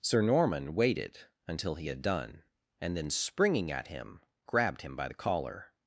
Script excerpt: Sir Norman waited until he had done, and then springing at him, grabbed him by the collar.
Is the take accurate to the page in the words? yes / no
yes